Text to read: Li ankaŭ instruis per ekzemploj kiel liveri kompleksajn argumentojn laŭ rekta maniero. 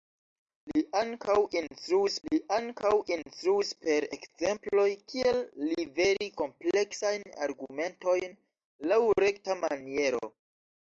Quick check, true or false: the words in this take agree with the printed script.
false